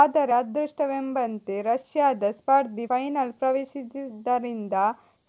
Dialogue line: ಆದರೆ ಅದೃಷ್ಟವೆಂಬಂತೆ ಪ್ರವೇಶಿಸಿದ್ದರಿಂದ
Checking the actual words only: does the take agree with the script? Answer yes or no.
no